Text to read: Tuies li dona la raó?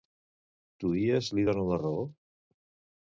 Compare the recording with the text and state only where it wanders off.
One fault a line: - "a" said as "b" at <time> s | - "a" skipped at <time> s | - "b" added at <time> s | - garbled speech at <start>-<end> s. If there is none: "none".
none